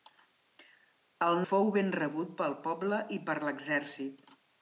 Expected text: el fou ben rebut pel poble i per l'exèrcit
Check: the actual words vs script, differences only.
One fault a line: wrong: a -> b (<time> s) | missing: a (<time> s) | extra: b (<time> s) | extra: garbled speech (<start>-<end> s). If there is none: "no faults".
no faults